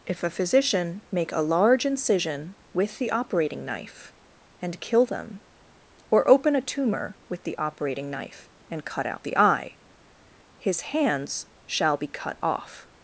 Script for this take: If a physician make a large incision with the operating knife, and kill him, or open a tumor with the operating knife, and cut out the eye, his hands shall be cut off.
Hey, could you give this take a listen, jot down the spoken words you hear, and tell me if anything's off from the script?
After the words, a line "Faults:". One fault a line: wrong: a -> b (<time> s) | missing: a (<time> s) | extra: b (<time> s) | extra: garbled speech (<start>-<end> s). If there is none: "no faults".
If a physician make a large incision with the operating knife, and kill them, or open a tumor with the operating knife, and cut out the eye, his hands shall be cut off.
Faults:
wrong: him -> them (5.0 s)